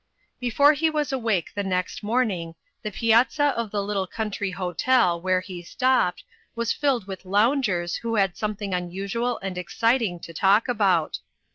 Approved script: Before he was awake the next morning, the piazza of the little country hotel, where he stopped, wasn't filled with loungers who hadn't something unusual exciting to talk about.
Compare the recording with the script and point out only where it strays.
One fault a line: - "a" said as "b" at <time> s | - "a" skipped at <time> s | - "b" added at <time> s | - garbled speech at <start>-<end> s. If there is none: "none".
- "wasn't" said as "was" at 6.5 s
- "hadn't" said as "had" at 8.2 s
- "and" added at 9.4 s